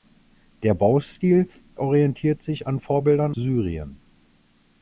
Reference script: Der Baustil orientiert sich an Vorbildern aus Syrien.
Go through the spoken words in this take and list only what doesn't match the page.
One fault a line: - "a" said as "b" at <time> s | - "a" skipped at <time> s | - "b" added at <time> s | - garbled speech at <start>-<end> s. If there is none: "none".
- "aus" skipped at 3.4 s